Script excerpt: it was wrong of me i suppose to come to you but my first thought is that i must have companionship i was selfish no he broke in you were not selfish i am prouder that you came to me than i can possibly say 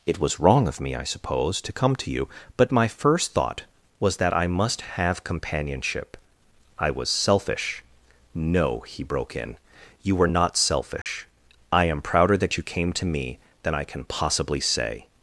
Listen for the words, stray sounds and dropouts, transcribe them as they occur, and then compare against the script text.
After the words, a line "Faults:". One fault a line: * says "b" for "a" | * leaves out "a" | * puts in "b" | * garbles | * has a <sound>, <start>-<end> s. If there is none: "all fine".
it was wrong of me i suppose to come to you but my first thought was that i must have companionship i was selfish no he broke in you were not selfish i am prouder that you came to me than i can possibly say
Faults:
* says "was" for "is"
* has a dropout, 11.0-11.1 s